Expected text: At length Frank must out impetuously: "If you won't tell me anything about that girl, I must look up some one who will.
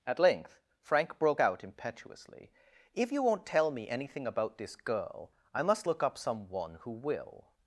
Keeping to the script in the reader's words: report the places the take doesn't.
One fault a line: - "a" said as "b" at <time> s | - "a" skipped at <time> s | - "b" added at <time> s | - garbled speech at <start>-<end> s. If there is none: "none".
- "must" said as "broke" at 1.2 s
- "that" said as "this" at 4.6 s